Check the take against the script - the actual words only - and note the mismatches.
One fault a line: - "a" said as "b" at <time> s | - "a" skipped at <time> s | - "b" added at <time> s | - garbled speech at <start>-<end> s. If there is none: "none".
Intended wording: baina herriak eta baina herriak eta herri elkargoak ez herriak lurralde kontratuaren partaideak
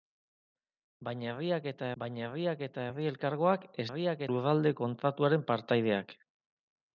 none